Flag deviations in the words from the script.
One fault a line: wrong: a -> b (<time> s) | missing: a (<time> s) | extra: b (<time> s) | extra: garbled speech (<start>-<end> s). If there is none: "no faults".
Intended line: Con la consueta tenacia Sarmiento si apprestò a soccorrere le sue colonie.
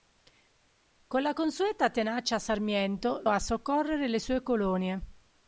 missing: si apprestò (3.2 s)